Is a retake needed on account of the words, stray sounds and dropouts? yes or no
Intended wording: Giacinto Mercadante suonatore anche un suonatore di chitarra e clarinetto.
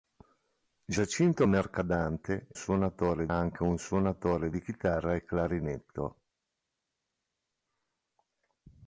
no